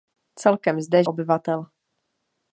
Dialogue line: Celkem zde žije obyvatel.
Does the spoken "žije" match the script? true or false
false